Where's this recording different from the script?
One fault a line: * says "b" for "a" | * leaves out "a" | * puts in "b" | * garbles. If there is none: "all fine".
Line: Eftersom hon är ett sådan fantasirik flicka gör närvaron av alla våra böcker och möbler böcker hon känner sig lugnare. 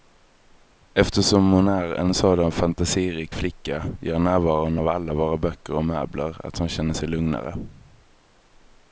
* says "en" for "ett"
* says "att" for "böcker"